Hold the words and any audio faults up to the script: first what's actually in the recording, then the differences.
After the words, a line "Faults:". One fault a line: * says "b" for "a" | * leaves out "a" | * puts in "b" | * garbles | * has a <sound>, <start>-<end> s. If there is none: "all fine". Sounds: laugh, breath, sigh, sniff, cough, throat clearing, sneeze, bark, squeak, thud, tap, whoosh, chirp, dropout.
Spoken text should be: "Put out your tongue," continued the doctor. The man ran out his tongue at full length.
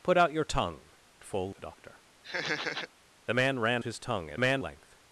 "Put out your tongue," full the doctor. The man ran his tongue at man length.
Faults:
* says "full" for "continued"
* has a laugh, 2.2-2.9 s
* leaves out "out"
* says "man" for "full"